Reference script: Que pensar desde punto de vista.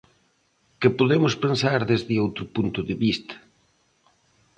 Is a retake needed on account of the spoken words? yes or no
yes